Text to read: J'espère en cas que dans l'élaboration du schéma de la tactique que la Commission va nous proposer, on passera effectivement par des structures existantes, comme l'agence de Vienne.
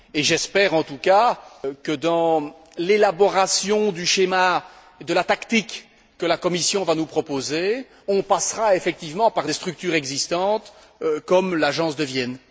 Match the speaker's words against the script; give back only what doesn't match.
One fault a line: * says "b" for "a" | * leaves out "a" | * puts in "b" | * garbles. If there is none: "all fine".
* puts in "tout"